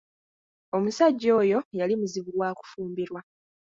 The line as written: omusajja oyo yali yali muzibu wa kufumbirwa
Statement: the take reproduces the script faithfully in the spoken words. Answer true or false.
false